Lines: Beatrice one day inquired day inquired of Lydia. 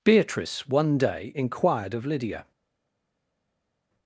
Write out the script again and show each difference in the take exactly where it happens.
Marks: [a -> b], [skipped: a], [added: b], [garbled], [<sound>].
Beatrice one day inquired [skipped: day inquired] of Lydia.